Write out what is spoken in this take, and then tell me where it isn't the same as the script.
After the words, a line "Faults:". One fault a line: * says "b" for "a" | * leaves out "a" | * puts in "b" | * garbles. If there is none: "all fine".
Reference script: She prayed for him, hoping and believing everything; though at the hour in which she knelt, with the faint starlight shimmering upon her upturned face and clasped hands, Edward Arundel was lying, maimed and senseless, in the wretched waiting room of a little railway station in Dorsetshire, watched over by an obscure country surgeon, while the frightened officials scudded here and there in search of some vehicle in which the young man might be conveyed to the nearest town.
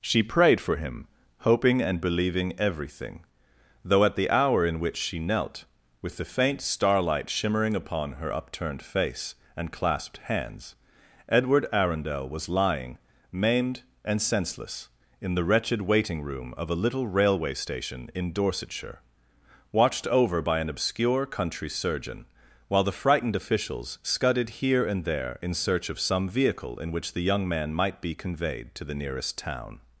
She prayed for him, hoping and believing everything; though at the hour in which she knelt, with the faint starlight shimmering upon her upturned face and clasped hands, Edward Arundel was lying, maimed and senseless, in the wretched waiting room of a little railway station in Dorsetshire, watched over by an obscure country surgeon, while the frightened officials scudded here and there in search of some vehicle in which the young man might be conveyed to the nearest town.
Faults:
all fine